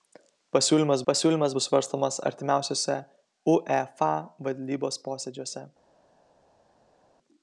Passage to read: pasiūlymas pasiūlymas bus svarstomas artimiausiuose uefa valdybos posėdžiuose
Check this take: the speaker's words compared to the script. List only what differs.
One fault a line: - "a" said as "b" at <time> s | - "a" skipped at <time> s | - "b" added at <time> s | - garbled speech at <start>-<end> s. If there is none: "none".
none